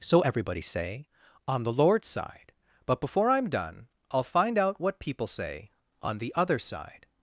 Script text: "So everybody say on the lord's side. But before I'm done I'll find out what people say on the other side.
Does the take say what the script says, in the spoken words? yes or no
yes